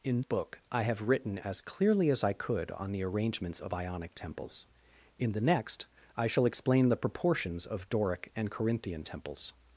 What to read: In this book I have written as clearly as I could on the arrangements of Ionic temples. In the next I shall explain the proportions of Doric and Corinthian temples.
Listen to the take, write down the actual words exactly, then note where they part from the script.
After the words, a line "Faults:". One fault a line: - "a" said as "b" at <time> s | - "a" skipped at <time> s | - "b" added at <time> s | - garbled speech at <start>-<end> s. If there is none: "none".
In book I have written as clearly as I could on the arrangements of Ionic temples. In the next I shall explain the proportions of Doric and Corinthian temples.
Faults:
- "this" skipped at 0.2 s